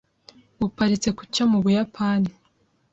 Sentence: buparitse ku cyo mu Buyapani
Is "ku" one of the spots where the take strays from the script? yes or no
no